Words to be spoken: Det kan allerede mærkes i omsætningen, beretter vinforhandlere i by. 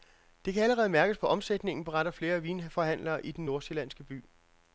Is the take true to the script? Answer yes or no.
no